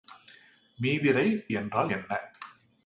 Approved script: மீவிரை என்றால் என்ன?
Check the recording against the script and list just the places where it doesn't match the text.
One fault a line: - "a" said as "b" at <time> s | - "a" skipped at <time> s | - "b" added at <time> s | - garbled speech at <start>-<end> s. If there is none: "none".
none